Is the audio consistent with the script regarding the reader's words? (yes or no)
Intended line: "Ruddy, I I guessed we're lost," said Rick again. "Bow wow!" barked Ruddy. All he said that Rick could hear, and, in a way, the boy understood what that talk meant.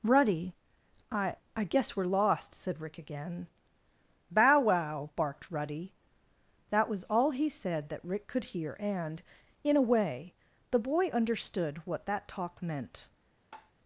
no